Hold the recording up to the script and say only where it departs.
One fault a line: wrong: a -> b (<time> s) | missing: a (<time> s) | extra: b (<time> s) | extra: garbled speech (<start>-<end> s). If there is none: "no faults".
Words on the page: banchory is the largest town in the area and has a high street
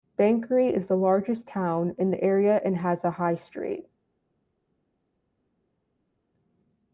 no faults